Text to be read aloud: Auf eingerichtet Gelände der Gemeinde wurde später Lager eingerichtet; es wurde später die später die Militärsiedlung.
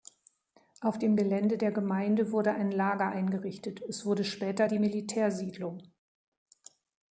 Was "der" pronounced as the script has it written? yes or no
yes